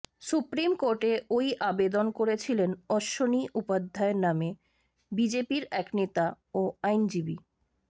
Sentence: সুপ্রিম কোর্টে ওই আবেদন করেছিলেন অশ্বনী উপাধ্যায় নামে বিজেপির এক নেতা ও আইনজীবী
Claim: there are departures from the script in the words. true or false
false